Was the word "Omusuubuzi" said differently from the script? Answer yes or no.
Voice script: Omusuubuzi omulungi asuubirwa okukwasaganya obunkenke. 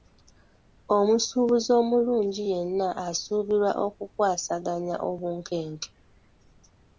no